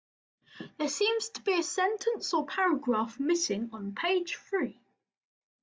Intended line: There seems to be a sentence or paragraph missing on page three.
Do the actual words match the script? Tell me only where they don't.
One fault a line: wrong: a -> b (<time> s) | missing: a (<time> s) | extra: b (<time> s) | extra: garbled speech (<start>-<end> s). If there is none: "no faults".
no faults